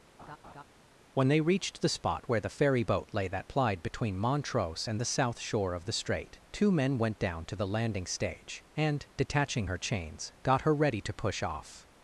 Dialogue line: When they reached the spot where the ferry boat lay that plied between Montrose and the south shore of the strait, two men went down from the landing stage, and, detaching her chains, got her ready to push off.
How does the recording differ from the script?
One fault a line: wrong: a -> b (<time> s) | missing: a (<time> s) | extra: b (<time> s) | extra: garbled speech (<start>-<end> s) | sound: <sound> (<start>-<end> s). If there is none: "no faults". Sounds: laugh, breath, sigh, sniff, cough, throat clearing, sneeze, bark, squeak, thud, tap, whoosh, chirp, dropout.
sound: laugh (0.2-0.6 s)
wrong: from -> to (7.4 s)